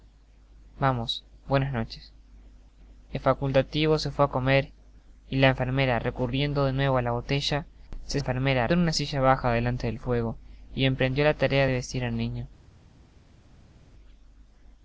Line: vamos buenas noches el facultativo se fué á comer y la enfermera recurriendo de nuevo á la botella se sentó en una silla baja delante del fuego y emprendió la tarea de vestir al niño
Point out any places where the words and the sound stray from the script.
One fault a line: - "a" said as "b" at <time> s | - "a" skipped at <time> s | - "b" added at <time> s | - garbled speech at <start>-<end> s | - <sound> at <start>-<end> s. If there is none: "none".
- "sentó" said as "enfermera" at 8.2 s